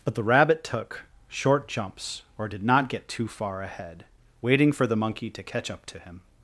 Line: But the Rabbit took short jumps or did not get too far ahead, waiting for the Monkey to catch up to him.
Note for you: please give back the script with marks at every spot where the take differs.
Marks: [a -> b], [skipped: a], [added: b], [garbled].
But the Rabbit took short jumps or did not get too far ahead, waiting for the Monkey to catch up to him.